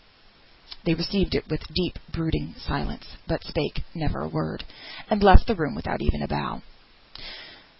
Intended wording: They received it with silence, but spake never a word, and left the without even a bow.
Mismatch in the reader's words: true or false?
true